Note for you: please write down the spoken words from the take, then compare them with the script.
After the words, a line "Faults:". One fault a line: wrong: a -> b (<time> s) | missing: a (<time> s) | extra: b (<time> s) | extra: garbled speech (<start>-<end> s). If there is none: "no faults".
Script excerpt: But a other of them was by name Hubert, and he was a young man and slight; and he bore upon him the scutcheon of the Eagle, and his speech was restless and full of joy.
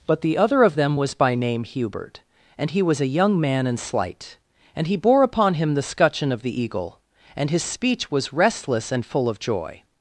But the other of them was by name Hubert, and he was a young man and slight; and he bore upon him the scutcheon of the Eagle, and his speech was restless and full of joy.
Faults:
wrong: a -> the (0.2 s)